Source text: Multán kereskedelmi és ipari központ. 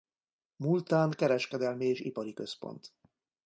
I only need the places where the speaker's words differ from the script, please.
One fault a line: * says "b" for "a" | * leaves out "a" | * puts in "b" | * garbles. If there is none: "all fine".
all fine